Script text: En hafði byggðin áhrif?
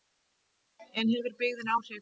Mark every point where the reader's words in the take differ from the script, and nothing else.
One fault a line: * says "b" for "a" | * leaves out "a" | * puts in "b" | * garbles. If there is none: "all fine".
* says "hefur" for "hafði"